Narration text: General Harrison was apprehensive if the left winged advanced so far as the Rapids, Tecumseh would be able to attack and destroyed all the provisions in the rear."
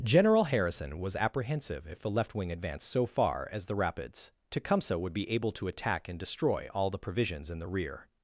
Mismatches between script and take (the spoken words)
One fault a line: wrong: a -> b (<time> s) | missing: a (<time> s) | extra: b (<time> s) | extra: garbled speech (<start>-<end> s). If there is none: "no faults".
wrong: winged -> wing (2.3 s)
wrong: destroyed -> destroy (6.2 s)